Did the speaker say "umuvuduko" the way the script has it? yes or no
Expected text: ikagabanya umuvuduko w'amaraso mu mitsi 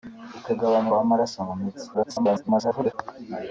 no